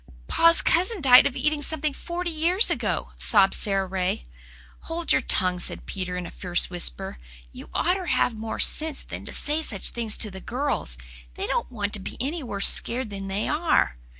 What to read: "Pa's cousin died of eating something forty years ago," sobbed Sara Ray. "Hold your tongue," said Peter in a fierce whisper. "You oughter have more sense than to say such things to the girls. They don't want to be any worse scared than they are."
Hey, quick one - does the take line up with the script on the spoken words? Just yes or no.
yes